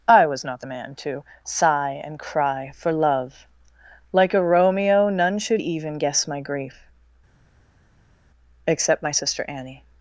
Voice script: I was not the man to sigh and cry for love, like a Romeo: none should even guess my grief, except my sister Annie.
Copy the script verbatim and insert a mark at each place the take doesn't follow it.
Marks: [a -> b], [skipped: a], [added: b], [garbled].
I was not the man to sigh and cry for love, like a Romeo: none should even guess my grief, except my sister Annie.